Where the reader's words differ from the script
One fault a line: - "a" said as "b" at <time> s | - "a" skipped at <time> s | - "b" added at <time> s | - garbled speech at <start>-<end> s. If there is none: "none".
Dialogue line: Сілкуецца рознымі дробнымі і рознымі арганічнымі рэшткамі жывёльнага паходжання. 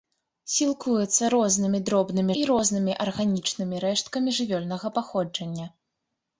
none